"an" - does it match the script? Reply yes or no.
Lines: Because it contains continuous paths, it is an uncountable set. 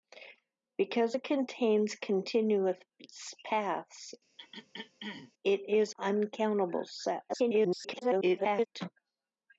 no